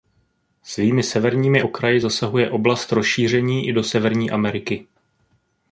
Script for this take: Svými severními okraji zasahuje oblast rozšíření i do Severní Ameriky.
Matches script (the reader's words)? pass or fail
pass